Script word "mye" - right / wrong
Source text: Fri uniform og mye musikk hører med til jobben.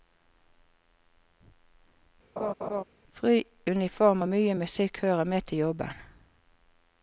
right